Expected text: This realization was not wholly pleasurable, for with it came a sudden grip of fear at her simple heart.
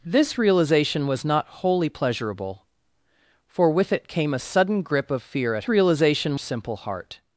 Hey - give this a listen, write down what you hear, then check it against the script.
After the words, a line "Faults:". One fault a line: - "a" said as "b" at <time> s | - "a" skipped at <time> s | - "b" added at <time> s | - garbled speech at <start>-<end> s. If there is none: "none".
This realization was not wholly pleasurable, for with it came a sudden grip of fear at realization simple heart.
Faults:
- "her" said as "realization" at 5.7 s